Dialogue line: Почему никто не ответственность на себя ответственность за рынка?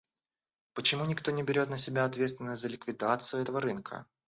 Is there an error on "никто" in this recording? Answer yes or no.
no